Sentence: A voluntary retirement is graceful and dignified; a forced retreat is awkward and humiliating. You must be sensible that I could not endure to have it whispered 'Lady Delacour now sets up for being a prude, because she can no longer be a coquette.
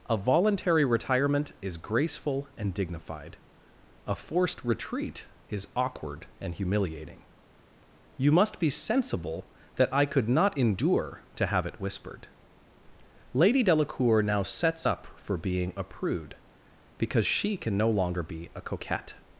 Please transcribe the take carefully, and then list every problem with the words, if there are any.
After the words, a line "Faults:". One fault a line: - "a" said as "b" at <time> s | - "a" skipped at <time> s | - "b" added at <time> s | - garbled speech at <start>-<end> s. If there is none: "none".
A voluntary retirement is graceful and dignified; a forced retreat is awkward and humiliating. You must be sensible that I could not endure to have it whispered 'Lady Delacour now sets up for being a prude, because she can no longer be a coquette.
Faults:
none